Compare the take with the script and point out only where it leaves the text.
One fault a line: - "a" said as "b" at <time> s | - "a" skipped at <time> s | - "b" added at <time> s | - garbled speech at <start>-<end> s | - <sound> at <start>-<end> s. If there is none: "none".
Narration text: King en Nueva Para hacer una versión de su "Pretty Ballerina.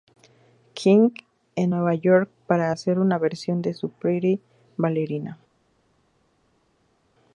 - "York" added at 1.9 s